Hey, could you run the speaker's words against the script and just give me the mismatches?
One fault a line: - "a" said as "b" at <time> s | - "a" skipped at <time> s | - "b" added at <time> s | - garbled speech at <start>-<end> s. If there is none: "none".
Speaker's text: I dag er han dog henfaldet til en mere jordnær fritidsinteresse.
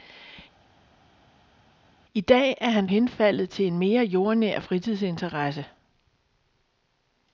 - "dog" skipped at 2.9 s